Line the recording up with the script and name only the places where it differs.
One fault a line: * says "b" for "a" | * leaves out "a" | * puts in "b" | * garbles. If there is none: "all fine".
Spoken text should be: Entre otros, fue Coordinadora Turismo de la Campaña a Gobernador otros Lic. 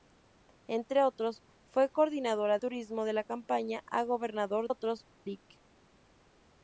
all fine